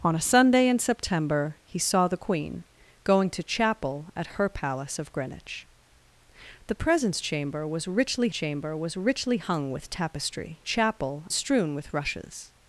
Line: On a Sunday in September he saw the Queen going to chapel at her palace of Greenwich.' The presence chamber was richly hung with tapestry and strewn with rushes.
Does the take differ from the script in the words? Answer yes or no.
yes